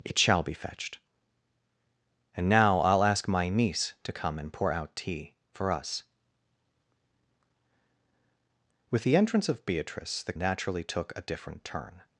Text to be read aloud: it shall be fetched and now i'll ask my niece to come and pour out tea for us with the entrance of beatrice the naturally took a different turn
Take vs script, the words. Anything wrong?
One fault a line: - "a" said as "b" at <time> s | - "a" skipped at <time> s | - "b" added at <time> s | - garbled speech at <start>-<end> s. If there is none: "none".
none